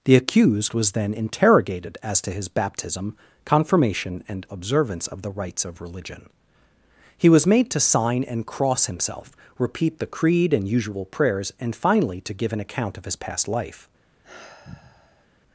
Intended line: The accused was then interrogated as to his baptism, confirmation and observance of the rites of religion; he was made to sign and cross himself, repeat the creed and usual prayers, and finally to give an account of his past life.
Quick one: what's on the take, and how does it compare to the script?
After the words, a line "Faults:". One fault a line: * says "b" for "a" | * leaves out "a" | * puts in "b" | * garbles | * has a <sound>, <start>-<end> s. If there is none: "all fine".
The accused was then interrogated as to his baptism, confirmation and observance of the rites of religion; he was made to sign and cross himself, repeat the creed and usual prayers, and finally to give an account of his past life.
Faults:
* has a sigh, 14.2-15.3 s